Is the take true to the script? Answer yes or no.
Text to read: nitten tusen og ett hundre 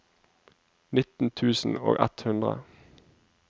yes